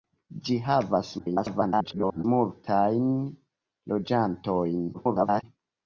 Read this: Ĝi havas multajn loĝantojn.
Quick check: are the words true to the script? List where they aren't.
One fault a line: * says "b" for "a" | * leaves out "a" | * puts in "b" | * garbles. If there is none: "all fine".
* garbles
* garbles